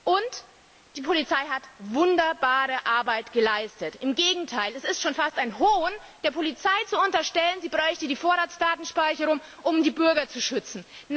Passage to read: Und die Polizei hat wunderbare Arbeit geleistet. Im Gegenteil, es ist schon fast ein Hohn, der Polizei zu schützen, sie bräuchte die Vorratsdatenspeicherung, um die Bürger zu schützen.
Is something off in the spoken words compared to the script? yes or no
yes